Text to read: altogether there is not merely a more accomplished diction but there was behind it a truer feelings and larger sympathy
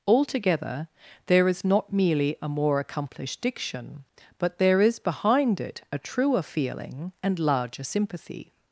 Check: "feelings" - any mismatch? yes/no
yes